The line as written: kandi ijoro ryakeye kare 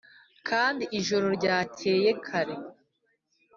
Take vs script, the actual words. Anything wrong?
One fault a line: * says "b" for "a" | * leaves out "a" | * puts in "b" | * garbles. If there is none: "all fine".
all fine